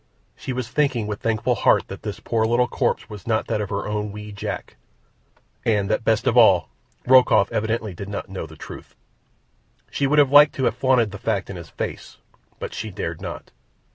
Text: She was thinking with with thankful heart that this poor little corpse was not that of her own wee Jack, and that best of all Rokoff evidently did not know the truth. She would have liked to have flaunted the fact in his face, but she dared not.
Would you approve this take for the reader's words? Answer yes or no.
no